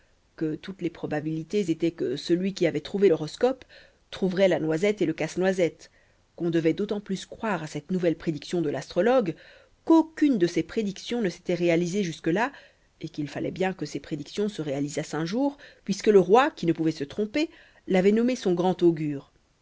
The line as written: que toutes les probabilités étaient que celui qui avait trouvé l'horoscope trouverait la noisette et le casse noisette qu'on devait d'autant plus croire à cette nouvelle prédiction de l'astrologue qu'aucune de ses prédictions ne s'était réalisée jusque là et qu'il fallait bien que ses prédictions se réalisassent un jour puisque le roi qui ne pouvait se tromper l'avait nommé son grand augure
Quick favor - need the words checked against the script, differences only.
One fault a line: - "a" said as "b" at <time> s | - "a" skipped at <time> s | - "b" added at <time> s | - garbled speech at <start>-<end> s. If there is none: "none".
none